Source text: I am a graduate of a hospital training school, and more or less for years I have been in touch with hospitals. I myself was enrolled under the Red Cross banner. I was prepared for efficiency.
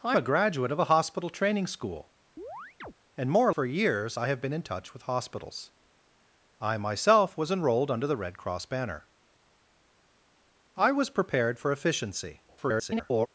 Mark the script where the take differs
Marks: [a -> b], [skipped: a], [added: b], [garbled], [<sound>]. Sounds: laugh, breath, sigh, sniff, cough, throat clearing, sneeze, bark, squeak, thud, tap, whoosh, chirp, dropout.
I [skipped: am] a graduate of a hospital training school, [chirp] and more or [skipped: less] for years I have been in touch with hospitals. I myself was enrolled under the Red Cross banner. I was prepared for efficiency. [garbled]